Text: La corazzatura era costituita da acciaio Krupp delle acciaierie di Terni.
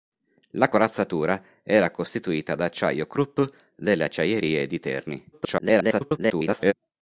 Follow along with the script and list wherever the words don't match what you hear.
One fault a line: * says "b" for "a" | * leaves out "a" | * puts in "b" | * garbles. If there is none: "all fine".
* garbles